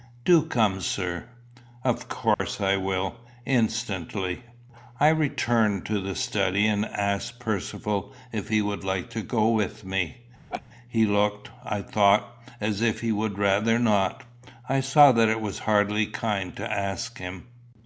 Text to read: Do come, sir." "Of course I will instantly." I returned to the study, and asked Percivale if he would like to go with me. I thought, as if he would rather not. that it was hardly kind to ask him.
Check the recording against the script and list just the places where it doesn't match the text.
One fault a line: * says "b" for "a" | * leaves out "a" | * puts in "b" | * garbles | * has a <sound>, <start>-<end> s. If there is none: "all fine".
* has a dropout, 2.3-2.4 s
* has a laugh, 10.5-10.6 s
* puts in "He looked"
* puts in "I saw"